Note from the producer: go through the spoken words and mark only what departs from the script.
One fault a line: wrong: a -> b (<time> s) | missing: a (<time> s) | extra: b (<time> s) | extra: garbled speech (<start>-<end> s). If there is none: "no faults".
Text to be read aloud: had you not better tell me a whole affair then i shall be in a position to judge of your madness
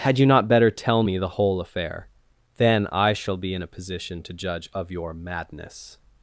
wrong: a -> the (1.2 s)